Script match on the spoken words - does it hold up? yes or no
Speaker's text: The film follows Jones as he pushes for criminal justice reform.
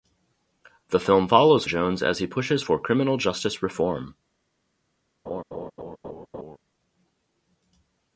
yes